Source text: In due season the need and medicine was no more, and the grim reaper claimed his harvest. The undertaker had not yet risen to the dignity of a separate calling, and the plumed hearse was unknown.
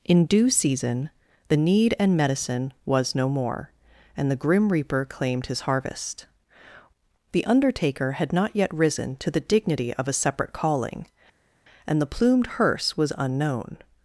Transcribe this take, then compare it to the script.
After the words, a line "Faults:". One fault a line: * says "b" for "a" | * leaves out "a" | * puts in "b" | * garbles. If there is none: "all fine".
In due season the need and medicine was no more, and the grim reaper claimed his harvest. The undertaker had not yet risen to the dignity of a separate calling, and the plumed hearse was unknown.
Faults:
all fine